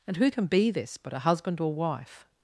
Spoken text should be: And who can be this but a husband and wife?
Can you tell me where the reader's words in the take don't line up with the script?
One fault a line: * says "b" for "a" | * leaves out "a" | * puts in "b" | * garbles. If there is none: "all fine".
* says "or" for "and"